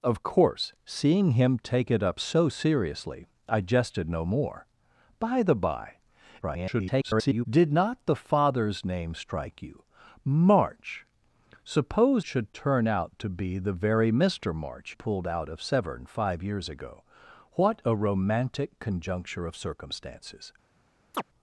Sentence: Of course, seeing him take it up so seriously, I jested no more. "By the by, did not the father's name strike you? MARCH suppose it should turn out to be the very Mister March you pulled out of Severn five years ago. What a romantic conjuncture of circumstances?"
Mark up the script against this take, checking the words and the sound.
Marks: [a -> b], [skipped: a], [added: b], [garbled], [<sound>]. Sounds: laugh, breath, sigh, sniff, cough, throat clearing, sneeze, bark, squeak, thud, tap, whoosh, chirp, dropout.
Of course, seeing him take it up so seriously, I jested no more. "By the by, [garbled] did not the father's name strike you? MARCH suppose [skipped: it] should turn out to be the very Mister March [skipped: you] pulled out of Severn five years ago. What a romantic conjuncture of circumstances?" [chirp]